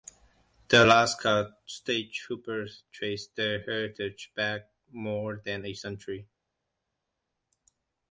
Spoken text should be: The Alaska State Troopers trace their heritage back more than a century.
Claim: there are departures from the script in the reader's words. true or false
false